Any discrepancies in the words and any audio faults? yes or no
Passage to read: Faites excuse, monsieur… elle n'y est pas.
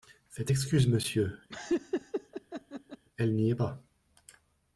yes